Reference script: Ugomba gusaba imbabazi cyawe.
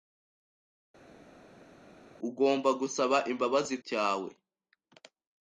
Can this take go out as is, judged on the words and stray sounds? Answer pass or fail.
pass